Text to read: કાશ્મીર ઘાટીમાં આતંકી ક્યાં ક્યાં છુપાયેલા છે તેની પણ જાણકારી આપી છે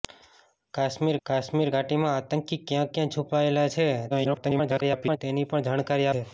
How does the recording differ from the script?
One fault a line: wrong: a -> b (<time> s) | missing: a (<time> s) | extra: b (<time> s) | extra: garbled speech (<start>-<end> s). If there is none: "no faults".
extra: કાશ્મીર (1.2 s)
extra: garbled speech (4.1-5.2 s)
missing: આપી (6.1 s)